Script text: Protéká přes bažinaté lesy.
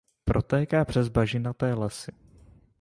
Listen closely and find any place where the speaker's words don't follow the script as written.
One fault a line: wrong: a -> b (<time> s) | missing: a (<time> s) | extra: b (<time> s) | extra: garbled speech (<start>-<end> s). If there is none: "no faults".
no faults